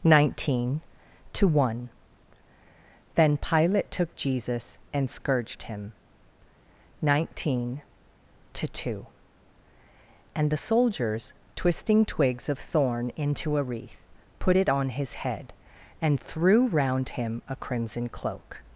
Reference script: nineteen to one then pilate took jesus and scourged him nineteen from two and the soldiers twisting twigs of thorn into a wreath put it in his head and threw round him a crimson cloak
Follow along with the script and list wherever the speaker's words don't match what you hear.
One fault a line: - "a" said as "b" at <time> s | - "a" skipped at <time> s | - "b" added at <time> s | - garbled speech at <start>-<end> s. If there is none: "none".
- "from" said as "to" at 8.5 s
- "in" said as "on" at 14.7 s